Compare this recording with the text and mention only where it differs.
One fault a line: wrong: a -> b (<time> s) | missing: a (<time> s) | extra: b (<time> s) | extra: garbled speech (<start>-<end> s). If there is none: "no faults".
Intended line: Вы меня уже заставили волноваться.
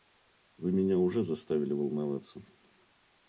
no faults